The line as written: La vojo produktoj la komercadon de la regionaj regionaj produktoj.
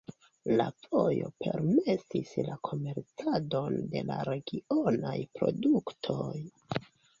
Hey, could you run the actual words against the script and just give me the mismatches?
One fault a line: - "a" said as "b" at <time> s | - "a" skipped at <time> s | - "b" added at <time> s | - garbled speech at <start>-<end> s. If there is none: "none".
- "produktoj" said as "permesis" at 1.4 s
- "regionaj" skipped at 5.2 s